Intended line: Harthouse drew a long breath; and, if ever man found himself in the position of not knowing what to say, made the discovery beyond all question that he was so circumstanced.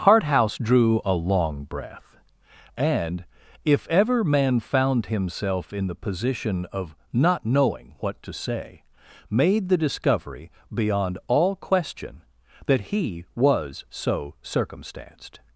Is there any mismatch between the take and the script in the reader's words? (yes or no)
no